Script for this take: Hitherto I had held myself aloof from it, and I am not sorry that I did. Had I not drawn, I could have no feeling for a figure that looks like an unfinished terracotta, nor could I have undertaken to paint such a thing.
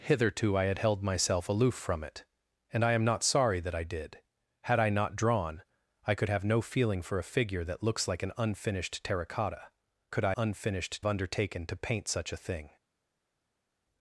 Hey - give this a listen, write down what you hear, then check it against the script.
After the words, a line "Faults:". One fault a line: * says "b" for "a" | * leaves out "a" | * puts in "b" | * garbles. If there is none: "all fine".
Hitherto I had held myself aloof from it, and I am not sorry that I did. Had I not drawn, I could have no feeling for a figure that looks like an unfinished terracotta, could I unfinished undertaken to paint such a thing.
Faults:
* leaves out "nor"
* says "unfinished" for "have"